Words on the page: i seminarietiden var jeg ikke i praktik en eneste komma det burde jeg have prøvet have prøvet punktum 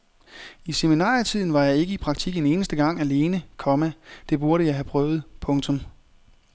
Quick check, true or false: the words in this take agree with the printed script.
false